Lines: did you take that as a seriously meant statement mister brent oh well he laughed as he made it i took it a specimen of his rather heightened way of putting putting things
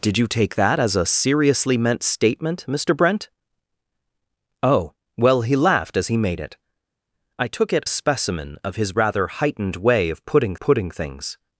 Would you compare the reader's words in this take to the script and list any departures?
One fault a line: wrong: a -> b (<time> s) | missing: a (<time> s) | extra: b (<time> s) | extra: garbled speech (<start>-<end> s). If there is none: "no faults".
no faults